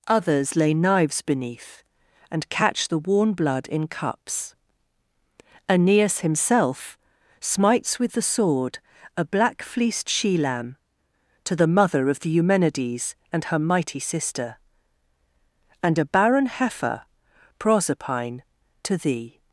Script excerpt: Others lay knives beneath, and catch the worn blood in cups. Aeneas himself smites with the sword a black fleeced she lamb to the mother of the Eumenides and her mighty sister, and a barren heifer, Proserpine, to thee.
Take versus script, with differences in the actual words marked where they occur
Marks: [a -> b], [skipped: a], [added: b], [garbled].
Others lay knives beneath, and catch the worn blood in cups. Aeneas himself smites with the sword a black fleeced she lamb to the mother of the Eumenides and her mighty sister, and a barren heifer, Proserpine, to thee.